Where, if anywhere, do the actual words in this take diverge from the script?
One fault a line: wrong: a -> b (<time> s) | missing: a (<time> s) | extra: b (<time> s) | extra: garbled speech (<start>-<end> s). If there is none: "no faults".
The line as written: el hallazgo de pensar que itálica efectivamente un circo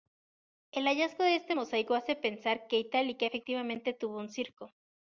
extra: este mosaico hace (1.4 s)
extra: tuvo (3.9 s)